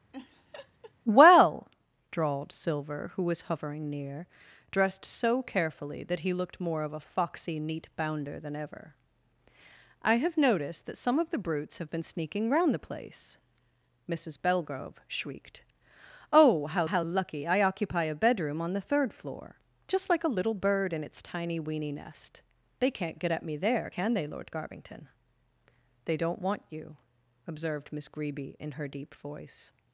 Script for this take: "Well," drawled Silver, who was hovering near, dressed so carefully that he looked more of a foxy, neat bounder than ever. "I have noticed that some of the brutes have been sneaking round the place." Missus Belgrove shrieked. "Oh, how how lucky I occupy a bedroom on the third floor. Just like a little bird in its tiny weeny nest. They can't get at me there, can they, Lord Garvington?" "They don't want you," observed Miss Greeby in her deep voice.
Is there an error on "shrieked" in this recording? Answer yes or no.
no